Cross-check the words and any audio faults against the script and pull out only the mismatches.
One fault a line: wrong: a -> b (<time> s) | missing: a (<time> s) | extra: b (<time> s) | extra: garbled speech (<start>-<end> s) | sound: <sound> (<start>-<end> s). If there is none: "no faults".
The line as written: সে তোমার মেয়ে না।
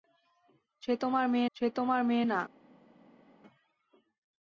extra: সে তোমার মেয়ে (1.6 s)